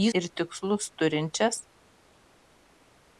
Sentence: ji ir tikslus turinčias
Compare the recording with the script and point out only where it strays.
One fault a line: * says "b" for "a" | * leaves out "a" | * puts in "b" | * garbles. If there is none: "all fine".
all fine